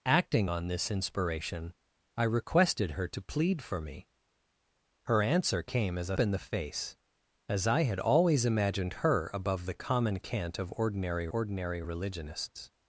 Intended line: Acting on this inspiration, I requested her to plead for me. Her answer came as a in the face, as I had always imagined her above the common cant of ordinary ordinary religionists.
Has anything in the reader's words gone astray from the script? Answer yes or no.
no